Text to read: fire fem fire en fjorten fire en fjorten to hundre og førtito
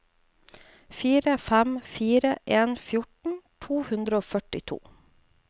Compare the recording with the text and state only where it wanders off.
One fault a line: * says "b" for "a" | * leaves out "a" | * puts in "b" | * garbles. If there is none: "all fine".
* leaves out "fire en fjorten"